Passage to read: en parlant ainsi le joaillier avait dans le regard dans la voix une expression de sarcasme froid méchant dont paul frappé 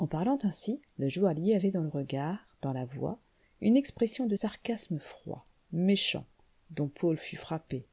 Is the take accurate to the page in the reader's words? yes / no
no